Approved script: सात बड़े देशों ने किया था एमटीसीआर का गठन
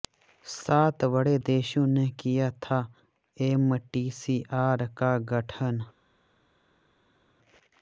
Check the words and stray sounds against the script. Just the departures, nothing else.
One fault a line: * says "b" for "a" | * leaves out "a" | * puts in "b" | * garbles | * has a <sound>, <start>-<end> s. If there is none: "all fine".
all fine